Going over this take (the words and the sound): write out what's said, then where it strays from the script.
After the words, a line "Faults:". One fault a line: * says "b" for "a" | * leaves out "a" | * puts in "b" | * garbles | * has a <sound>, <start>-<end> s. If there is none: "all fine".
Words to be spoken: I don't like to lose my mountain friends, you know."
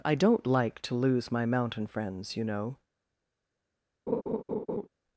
I don't like to lose my mountain friends, you know."
Faults:
* has a laugh, 4.1-4.9 s